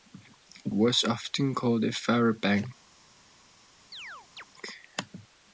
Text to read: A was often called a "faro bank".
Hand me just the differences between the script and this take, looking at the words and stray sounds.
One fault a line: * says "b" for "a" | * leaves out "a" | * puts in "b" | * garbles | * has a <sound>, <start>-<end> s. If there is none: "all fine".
* has a chirp, 3.9-4.4 s